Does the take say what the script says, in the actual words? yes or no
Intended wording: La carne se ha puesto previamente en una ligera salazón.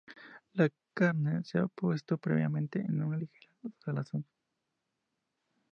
yes